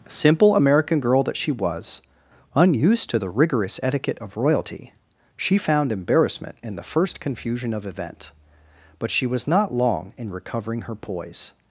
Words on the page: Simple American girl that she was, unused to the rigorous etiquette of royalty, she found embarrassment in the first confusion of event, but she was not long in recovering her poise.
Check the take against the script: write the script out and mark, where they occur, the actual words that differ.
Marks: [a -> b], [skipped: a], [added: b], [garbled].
Simple American girl that she was, unused to the rigorous etiquette of royalty, she found embarrassment in the first confusion of event, but she was not long in recovering her poise.